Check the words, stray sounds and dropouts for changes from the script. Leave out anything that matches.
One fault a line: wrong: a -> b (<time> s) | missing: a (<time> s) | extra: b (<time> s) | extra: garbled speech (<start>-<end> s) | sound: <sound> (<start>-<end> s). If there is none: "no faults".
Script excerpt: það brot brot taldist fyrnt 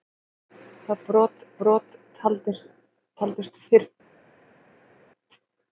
no faults